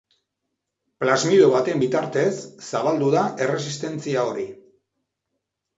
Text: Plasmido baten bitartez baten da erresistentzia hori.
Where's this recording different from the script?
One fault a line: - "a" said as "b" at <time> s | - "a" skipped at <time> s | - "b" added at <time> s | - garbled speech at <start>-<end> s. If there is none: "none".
- "baten" said as "zabaldu" at 2.7 s